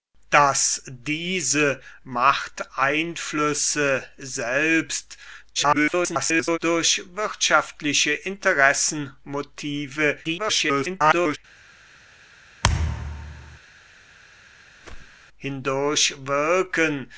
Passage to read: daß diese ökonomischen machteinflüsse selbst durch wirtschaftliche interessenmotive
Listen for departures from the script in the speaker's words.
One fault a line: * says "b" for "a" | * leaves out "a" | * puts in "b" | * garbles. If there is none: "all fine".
* leaves out "ökonomischen"
* garbles
* garbles